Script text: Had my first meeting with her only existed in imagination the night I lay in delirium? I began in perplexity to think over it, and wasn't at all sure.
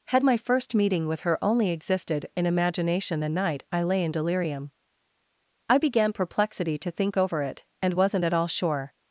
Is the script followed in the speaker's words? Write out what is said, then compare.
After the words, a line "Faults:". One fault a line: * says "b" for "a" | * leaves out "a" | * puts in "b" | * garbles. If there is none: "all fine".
Had my first meeting with her only existed in imagination the night I lay in delirium? I began perplexity to think over it, and wasn't at all sure.
Faults:
* leaves out "in"